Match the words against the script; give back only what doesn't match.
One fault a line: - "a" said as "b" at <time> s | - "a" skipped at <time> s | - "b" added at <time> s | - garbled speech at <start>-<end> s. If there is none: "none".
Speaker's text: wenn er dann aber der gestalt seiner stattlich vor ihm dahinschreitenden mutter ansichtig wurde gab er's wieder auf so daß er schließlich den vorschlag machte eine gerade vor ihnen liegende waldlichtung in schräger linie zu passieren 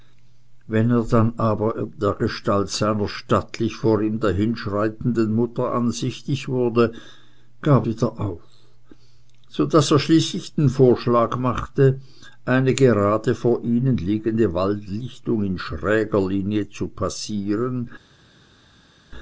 - "er's" skipped at 7.8 s